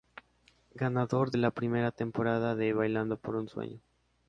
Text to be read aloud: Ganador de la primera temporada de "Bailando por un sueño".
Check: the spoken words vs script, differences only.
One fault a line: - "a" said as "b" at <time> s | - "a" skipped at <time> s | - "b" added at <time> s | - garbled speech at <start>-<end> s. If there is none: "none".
none